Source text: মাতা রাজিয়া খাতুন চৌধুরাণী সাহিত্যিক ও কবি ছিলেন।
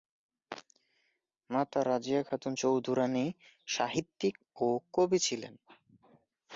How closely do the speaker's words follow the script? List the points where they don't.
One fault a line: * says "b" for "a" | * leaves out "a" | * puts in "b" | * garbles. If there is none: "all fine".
all fine